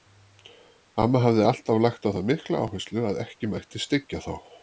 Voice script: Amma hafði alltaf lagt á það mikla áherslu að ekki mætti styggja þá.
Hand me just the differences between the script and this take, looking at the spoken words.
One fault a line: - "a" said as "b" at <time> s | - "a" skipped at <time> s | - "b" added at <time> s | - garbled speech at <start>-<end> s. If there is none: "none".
none